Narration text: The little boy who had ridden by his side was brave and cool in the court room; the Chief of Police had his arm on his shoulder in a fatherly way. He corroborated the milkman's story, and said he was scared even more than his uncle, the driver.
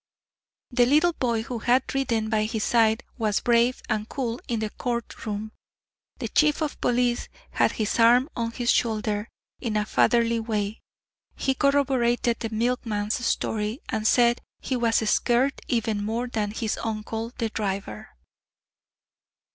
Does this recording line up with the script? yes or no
yes